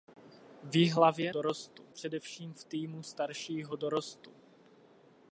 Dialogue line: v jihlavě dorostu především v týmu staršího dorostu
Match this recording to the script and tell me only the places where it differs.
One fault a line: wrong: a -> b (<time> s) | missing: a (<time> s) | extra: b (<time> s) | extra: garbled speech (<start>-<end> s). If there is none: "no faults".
no faults